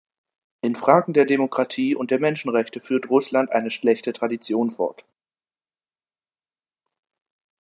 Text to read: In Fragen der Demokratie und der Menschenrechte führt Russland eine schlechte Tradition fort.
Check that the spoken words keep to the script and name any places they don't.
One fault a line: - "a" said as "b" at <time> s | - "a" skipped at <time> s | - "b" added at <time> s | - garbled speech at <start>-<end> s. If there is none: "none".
none